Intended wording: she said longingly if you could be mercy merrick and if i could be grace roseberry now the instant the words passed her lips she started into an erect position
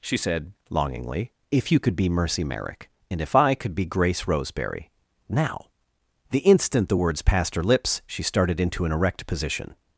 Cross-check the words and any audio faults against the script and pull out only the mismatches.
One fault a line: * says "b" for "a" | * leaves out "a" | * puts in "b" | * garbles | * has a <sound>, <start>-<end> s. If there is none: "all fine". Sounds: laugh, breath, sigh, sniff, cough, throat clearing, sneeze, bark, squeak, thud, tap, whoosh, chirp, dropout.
all fine